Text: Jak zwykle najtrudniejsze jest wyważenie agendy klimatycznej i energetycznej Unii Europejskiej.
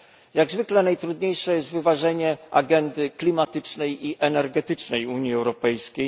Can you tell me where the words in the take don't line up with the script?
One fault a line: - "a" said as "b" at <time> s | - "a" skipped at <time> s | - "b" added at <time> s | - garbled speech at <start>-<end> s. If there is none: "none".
none